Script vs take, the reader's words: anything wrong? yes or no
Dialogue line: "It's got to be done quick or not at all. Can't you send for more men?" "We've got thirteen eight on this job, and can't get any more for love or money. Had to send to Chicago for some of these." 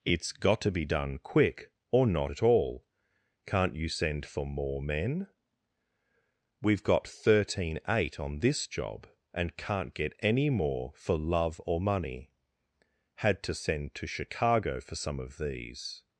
no